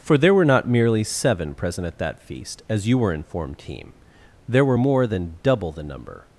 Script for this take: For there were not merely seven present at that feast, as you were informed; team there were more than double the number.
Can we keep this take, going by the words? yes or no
yes